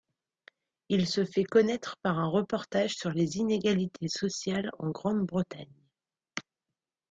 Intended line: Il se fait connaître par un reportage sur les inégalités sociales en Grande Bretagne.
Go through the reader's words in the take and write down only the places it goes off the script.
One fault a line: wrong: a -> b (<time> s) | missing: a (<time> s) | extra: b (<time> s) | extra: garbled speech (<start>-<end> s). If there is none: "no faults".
no faults